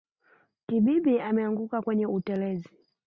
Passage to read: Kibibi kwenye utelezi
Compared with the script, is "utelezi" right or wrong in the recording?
right